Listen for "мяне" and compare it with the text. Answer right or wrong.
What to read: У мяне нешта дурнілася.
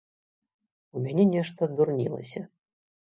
right